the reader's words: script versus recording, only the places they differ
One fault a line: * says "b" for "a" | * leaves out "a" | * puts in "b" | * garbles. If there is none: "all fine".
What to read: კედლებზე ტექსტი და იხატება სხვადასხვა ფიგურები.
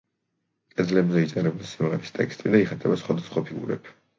* puts in "იწერება სიმღერის"